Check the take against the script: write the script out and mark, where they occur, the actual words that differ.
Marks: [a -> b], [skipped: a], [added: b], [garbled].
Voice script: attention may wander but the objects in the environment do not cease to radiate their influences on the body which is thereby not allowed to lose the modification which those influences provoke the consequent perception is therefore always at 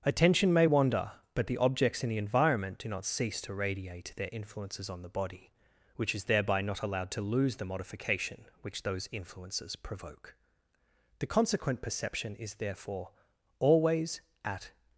attention may wander but the objects in the environment do not cease to radiate their influences on the body which is thereby not allowed to lose the modification which those influences provoke the consequent perception is therefore always at